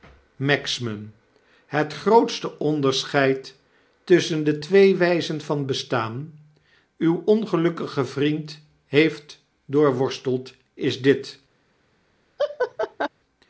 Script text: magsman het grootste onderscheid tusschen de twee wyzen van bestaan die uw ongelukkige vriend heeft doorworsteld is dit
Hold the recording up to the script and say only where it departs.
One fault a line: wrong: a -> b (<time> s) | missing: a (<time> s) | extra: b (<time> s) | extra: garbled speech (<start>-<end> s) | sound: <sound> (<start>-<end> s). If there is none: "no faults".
missing: die (6.4 s)
sound: laugh (12.4-13.1 s)